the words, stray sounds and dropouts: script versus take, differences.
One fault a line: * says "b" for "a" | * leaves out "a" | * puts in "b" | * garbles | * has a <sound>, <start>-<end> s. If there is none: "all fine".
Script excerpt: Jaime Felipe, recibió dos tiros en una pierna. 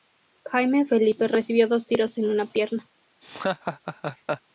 * has a laugh, 3.2-4.4 s